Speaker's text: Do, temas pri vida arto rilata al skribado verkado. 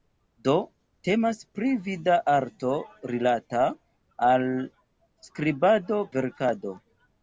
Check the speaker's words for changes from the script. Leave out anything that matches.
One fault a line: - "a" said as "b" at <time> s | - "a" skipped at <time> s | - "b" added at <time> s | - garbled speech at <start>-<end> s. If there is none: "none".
none